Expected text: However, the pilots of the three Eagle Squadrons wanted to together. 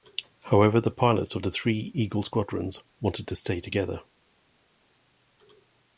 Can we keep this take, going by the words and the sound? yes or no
no